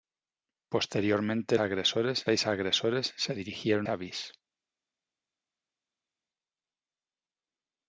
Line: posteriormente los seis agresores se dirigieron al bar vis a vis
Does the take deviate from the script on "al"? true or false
true